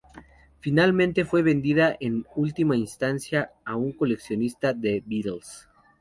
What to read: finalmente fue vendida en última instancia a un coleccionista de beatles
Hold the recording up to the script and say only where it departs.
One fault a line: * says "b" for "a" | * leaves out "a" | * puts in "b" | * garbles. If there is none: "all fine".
all fine